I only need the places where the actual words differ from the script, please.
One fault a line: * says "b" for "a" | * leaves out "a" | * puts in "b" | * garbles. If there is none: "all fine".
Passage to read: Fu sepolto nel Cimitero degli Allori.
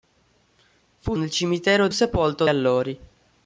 * leaves out "sepolto"
* says "sepolto" for "degli"